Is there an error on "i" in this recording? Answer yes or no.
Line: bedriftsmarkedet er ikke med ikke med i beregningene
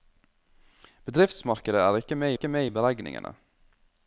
no